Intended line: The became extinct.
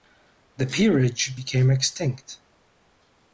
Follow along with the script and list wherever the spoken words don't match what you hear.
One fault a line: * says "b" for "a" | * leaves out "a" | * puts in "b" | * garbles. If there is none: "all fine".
* puts in "peerage"